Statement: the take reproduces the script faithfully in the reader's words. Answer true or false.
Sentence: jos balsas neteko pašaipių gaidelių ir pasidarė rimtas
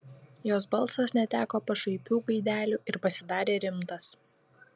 true